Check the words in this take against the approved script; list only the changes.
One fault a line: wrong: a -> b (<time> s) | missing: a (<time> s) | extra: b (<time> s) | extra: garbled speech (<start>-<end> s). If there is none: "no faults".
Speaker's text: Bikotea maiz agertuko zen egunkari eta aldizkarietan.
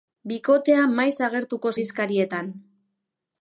missing: zen egunkari eta (1.8 s)